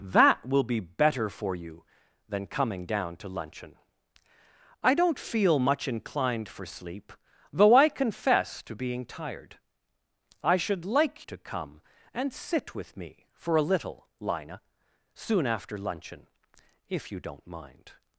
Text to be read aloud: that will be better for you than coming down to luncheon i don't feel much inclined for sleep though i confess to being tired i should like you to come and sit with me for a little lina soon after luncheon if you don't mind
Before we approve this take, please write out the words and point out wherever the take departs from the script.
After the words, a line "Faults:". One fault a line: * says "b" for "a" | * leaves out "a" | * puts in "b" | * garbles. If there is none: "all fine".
that will be better for you than coming down to luncheon i don't feel much inclined for sleep though i confess to being tired i should like to come and sit with me for a little lina soon after luncheon if you don't mind
Faults:
* leaves out "you"